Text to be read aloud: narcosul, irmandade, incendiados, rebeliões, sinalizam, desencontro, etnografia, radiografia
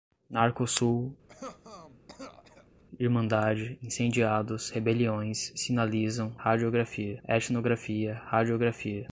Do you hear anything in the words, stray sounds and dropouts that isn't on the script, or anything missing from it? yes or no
yes